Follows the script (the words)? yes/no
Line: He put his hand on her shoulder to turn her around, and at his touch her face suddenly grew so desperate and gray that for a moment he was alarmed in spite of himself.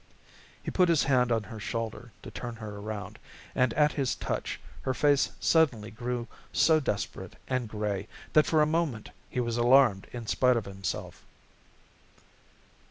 yes